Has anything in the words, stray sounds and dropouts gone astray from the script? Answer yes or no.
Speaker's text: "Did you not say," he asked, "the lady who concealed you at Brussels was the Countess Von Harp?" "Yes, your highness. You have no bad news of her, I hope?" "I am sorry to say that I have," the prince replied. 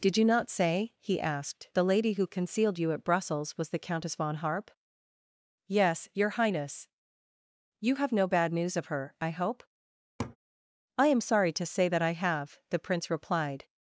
yes